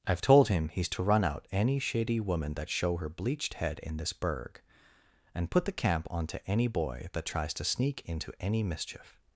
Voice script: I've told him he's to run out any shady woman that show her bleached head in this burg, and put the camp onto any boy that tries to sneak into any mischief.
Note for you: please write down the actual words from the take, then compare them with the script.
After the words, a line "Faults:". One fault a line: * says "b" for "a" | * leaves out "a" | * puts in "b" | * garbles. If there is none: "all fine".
I've told him he's to run out any shady woman that show her bleached head in this burg, and put the camp onto any boy that tries to sneak into any mischief.
Faults:
all fine